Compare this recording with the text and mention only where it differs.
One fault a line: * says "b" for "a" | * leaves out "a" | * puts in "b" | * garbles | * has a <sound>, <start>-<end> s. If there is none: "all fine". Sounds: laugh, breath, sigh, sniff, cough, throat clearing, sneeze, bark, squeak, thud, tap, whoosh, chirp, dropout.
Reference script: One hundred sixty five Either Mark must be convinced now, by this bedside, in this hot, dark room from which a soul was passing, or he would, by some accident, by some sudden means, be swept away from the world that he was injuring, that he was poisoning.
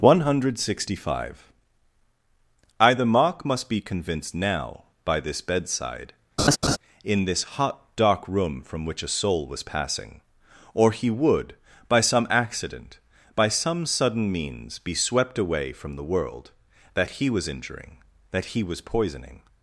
* has a laugh, 6.4-6.8 s